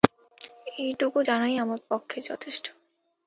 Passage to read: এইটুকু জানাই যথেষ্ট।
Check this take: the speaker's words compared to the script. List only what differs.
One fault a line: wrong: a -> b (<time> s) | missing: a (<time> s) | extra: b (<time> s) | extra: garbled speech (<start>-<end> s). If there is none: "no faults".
extra: আমার পক্ষে (1.5 s)